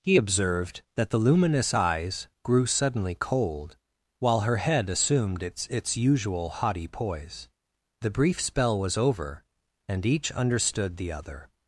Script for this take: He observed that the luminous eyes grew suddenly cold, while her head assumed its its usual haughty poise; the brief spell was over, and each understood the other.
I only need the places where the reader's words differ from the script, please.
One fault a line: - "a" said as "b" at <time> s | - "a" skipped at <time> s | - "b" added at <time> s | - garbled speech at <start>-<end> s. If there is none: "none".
none